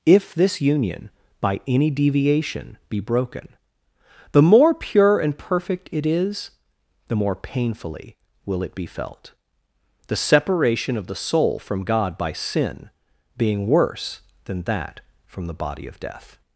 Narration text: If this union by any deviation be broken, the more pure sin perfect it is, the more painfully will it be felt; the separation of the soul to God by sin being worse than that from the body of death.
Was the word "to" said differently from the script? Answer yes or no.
yes